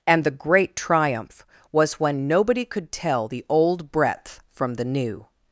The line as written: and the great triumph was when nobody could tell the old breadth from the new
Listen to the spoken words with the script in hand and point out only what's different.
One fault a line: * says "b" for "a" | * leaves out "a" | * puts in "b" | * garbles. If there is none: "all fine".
all fine